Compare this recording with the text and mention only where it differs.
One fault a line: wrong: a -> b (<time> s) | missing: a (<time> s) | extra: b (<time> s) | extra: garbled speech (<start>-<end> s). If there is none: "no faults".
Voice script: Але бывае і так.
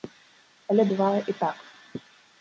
no faults